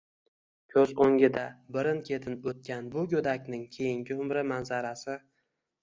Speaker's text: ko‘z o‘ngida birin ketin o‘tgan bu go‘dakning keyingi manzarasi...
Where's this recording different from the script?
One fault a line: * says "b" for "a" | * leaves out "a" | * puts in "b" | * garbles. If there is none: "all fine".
* puts in "umri"